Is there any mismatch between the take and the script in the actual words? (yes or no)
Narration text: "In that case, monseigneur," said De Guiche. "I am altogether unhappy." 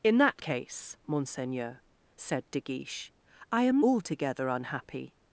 no